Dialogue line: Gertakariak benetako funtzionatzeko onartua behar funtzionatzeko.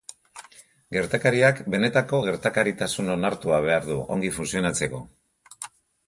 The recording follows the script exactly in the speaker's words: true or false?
false